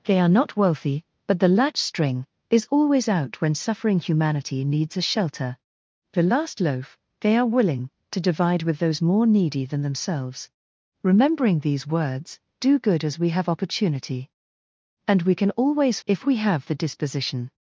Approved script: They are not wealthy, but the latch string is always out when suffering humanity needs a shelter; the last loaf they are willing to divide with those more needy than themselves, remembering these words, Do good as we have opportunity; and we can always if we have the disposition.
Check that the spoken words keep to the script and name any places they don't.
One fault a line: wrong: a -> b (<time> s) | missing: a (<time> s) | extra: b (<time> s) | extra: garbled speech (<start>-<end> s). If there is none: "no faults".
no faults